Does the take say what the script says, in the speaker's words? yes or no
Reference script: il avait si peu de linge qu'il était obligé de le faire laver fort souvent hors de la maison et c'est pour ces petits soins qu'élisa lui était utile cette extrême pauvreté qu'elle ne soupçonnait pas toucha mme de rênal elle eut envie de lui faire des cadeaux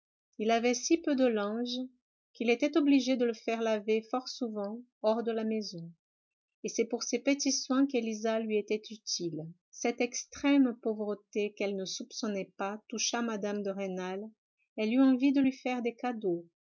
yes